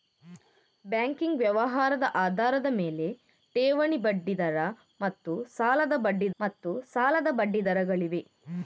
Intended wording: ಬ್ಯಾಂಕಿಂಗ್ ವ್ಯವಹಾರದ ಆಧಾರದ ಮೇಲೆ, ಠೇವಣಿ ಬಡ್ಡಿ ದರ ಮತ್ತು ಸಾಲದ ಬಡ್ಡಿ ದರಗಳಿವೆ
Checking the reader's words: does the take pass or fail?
fail